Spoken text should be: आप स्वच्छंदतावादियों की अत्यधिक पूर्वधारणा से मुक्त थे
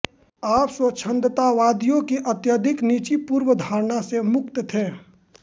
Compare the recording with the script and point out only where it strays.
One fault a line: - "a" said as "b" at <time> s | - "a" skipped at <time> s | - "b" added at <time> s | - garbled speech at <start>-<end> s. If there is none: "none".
- "निजी" added at 2.8 s